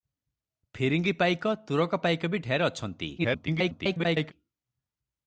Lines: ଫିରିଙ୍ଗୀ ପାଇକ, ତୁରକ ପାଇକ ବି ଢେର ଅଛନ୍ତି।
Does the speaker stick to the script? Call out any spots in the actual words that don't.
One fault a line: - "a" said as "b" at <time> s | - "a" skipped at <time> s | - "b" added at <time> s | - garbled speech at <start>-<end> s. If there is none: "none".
- garbled speech at 3.2-4.3 s